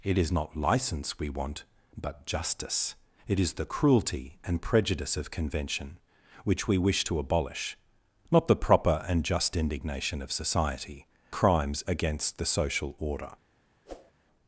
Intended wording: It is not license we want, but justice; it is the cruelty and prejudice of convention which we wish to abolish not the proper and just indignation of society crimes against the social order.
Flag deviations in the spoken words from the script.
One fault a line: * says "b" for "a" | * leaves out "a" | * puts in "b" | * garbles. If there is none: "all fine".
all fine